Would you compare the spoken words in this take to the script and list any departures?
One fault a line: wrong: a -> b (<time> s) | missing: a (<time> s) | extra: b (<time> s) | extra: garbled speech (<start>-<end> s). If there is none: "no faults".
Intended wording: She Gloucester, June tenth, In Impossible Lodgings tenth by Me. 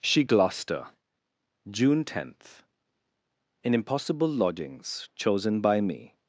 wrong: tenth -> chosen (5.1 s)